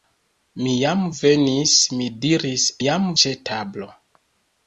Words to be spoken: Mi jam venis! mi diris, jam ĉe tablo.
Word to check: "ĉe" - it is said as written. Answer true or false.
true